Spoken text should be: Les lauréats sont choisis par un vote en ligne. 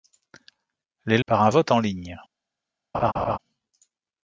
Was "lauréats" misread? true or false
true